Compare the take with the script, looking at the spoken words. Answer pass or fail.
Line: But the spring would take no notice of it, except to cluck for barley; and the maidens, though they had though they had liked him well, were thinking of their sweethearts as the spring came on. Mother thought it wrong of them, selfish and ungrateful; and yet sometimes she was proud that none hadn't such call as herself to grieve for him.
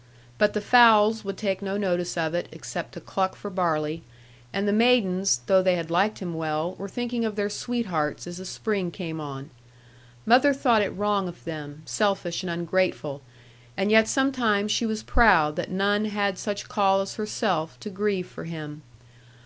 fail